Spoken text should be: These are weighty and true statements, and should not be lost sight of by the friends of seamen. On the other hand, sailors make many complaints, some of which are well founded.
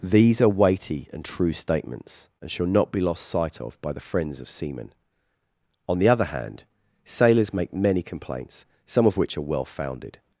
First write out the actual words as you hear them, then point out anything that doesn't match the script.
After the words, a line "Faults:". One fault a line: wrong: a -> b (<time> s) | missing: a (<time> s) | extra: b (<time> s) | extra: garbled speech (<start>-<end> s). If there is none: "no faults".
These are weighty and true statements, and shall not be lost sight of by the friends of seamen. On the other hand, sailors make many complaints, some of which are well founded.
Faults:
wrong: should -> shall (2.5 s)